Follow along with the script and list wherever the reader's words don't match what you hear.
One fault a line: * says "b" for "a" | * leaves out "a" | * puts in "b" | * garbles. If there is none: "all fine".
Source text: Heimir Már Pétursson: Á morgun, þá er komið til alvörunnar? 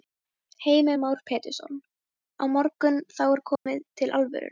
all fine